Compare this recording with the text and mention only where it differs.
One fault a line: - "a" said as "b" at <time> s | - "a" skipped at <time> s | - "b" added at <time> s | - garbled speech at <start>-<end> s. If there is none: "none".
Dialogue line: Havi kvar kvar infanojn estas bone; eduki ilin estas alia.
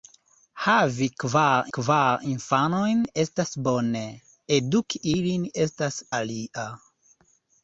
none